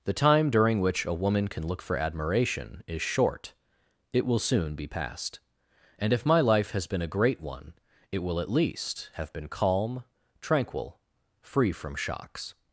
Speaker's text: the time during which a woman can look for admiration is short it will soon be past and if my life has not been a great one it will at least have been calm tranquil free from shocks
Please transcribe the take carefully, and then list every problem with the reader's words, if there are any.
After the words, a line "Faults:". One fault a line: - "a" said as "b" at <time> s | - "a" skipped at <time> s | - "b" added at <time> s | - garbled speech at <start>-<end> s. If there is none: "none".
the time during which a woman can look for admiration is short it will soon be past and if my life has been a great one it will at least have been calm tranquil free from shocks
Faults:
- "not" skipped at 6.9 s